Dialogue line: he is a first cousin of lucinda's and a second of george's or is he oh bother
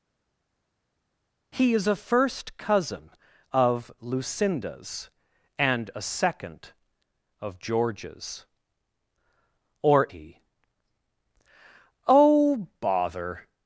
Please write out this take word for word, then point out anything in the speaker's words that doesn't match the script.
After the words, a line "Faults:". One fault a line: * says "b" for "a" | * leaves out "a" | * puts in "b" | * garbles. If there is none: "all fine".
he is a first cousin of lucinda's and a second of george's or he oh bother
Faults:
* leaves out "is"